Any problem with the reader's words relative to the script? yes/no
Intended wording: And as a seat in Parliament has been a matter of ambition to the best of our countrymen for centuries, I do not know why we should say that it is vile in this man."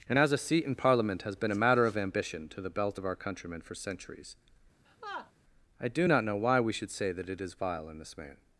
yes